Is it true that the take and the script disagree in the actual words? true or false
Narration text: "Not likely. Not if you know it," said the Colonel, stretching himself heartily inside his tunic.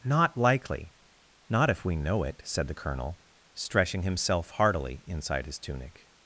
true